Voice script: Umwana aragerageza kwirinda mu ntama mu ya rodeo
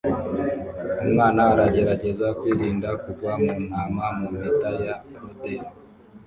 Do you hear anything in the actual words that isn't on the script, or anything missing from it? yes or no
yes